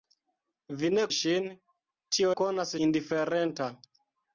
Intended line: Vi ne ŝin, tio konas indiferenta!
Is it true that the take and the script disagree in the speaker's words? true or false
false